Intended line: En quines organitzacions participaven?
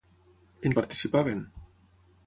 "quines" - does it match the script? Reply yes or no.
no